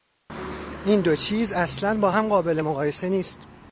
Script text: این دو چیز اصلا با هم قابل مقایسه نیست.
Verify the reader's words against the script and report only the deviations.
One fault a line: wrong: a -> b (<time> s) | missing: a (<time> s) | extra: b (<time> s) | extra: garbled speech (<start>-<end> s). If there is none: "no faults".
no faults